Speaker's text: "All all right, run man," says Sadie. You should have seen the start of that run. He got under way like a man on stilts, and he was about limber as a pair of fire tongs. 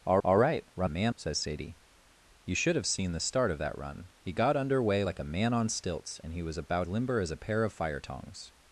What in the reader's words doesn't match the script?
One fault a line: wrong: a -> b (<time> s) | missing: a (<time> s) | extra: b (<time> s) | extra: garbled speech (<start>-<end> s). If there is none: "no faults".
no faults